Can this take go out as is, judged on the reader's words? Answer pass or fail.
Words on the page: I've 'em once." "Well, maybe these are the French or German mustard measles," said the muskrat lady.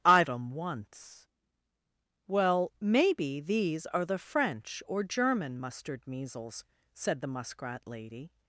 pass